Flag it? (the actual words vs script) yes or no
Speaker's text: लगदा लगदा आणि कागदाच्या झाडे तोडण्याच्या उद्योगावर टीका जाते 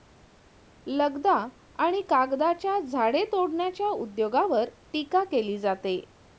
yes